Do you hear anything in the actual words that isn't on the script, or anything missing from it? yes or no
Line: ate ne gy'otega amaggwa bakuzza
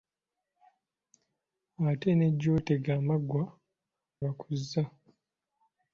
no